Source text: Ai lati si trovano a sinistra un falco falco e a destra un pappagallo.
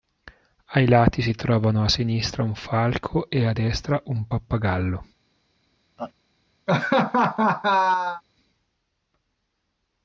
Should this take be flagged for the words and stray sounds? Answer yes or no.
yes